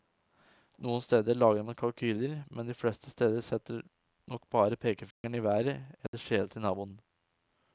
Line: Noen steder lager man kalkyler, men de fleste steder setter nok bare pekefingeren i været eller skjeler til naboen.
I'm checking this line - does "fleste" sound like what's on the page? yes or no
yes